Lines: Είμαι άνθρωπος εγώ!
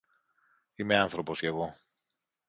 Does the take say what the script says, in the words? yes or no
yes